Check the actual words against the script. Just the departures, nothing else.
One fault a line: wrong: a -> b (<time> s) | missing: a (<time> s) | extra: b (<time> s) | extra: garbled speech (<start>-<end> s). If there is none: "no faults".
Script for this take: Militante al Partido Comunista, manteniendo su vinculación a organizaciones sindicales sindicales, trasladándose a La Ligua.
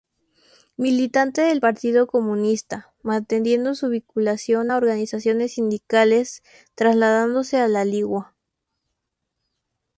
wrong: al -> del (1.4 s)
missing: sindicales (6.4 s)